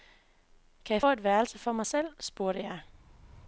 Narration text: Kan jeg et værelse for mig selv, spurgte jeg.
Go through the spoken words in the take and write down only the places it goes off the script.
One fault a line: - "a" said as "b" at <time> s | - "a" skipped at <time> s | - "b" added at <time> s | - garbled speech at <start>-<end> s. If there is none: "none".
none